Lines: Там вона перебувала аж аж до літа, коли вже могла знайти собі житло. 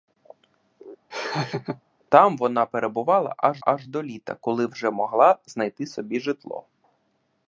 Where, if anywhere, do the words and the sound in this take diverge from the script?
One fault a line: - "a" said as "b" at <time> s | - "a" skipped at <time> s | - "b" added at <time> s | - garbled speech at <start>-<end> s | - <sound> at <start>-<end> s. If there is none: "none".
- laugh at 1.1-1.8 s